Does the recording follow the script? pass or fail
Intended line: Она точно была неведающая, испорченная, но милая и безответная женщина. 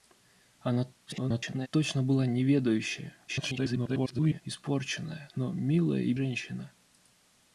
fail